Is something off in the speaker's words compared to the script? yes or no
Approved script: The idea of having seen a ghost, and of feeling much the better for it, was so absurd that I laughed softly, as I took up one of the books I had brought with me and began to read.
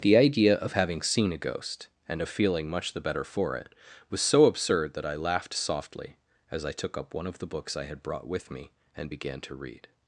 no